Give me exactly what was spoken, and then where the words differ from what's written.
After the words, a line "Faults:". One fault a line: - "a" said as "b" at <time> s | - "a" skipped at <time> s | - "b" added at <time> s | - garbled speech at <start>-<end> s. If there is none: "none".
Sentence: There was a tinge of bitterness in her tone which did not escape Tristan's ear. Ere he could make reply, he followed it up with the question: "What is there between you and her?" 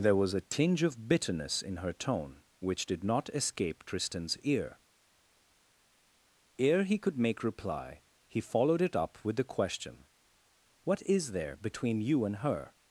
There was a tinge of bitterness in her tone which did not escape Tristan's ear. Ere he could make reply, he followed it up with the question: "What is there between you and her?"
Faults:
none